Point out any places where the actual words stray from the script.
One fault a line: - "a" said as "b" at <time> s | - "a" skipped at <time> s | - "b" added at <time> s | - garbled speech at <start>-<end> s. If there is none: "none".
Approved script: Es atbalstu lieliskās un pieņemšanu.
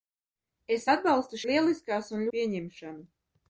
none